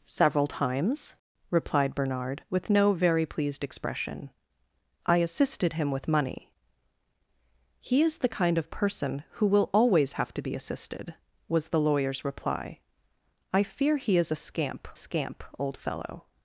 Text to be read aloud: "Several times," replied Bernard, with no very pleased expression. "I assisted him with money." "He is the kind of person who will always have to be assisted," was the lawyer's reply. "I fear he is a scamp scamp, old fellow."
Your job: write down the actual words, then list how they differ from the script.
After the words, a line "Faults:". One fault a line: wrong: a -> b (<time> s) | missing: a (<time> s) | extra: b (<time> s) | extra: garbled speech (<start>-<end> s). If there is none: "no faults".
"Several times," replied Bernard, with no very pleased expression. "I assisted him with money." "He is the kind of person who will always have to be assisted," was the lawyer's reply. "I fear he is a scamp scamp, old fellow."
Faults:
no faults